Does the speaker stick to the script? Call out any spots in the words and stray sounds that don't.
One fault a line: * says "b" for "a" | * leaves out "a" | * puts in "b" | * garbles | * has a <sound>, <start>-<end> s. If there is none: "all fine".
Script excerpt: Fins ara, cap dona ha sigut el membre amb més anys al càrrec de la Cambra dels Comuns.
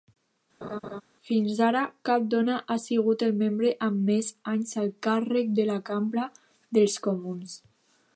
* has a laugh, 0.6-1.0 s